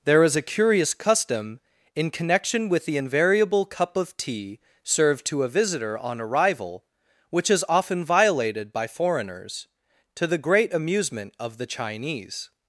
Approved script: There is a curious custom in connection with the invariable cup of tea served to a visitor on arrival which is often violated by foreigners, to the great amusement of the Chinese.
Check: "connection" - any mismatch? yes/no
no